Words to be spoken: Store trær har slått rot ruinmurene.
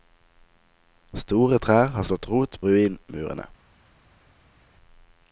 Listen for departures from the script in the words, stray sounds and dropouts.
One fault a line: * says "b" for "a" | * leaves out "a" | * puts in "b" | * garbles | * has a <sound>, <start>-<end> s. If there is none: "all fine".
all fine